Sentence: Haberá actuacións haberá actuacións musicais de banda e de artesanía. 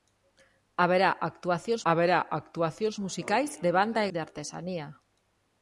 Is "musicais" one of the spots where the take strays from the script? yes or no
no